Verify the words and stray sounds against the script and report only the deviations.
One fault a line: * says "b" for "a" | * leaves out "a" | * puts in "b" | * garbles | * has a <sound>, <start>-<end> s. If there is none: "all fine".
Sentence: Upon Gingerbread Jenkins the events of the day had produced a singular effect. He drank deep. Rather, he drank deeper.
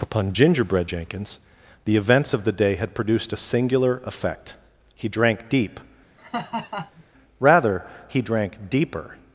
* has a laugh, 6.2-7.0 s